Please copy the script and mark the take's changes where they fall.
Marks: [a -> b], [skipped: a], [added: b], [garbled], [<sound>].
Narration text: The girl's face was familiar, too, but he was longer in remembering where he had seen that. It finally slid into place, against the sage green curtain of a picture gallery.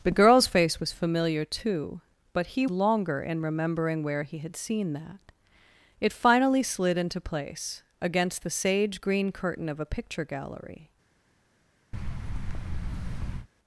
The girl's face was familiar, too, but he [skipped: was] longer in remembering where he had seen that. It finally slid into place, against the sage green curtain of a picture gallery. [thud]